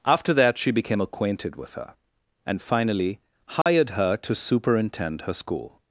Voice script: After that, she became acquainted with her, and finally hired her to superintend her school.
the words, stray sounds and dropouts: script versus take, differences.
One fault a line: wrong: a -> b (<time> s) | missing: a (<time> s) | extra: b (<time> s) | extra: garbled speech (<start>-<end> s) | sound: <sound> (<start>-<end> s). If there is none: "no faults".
sound: dropout (3.6-3.7 s)